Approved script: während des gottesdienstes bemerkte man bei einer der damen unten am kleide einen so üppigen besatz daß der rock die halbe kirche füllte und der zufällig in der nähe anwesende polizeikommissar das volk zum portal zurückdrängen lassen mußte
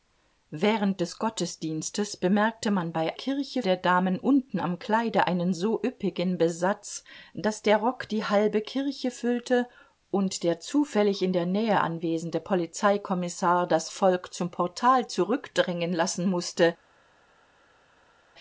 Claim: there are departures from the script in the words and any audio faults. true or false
true